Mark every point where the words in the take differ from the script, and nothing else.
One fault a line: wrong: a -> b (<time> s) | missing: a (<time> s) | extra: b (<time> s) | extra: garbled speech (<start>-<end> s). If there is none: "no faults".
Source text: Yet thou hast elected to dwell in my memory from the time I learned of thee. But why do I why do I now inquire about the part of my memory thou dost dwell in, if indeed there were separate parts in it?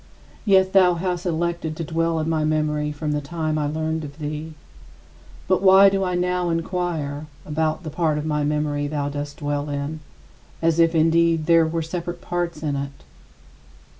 missing: why do I (6.2 s)
extra: as (10.6 s)